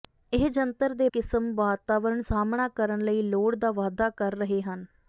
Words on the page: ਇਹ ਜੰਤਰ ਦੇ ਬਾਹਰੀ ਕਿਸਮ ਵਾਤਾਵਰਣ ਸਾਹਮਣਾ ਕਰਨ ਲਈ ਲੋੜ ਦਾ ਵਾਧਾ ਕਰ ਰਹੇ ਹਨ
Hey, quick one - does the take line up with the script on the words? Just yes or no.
no